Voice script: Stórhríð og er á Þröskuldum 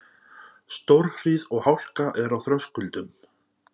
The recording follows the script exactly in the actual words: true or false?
false